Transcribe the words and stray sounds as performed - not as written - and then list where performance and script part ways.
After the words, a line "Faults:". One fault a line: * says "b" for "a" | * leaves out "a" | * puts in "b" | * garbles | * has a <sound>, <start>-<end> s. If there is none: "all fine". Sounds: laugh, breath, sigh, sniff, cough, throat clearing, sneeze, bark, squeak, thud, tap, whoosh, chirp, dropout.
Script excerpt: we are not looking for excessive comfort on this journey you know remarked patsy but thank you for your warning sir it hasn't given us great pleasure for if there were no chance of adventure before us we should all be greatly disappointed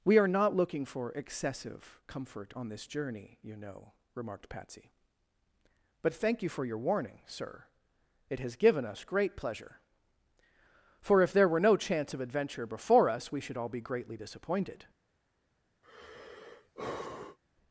we are not looking for excessive comfort on this journey you know remarked patsy but thank you for your warning sir it has given us great pleasure for if there were no chance of adventure before us we should all be greatly disappointed
Faults:
* says "has" for "hasn't"
* has a sigh, 15.8-17.4 s